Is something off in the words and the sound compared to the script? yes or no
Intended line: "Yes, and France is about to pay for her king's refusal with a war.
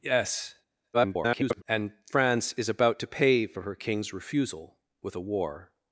yes